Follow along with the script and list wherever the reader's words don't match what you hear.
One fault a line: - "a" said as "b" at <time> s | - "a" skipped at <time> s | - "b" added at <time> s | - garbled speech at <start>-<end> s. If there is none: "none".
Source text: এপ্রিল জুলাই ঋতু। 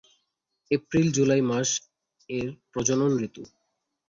- "মাস এর প্রজনন" added at 1.4 s